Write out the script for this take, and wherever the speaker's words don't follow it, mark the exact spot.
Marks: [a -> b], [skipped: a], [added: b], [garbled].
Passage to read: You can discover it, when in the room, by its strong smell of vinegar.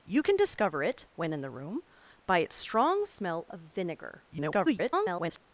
You can discover it, when in the room, by its strong smell of vinegar. [garbled]